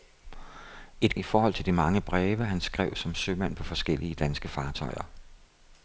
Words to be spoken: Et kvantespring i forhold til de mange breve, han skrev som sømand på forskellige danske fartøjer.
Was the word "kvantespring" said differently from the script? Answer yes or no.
yes